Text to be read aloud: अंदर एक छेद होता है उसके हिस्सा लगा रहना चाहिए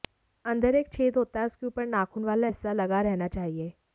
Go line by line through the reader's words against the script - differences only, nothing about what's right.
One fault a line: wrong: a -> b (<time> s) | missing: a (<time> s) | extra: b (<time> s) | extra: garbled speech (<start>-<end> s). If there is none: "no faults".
extra: ऊपर नाखून वाला (1.6 s)